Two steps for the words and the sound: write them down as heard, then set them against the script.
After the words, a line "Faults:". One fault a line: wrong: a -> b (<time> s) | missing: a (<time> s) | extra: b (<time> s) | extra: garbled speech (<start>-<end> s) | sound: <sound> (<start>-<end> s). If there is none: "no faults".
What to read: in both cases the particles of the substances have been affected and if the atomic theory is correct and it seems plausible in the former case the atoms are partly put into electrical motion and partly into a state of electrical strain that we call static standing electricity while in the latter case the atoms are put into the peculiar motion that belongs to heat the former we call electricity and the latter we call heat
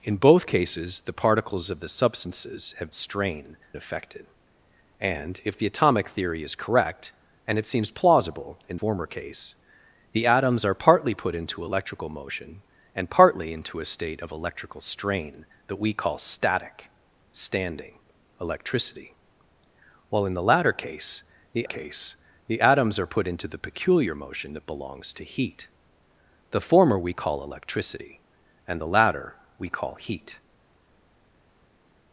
in both cases the particles of the substances have strain affected and if the atomic theory is correct and it seems plausible in former case the atoms are partly put into electrical motion and partly into a state of electrical strain that we call static standing electricity while in the latter case the case the atoms are put into the peculiar motion that belongs to heat the former we call electricity and the latter we call heat
Faults:
wrong: been -> strain (2.9 s)
missing: the (8.8 s)
extra: case the (21.6 s)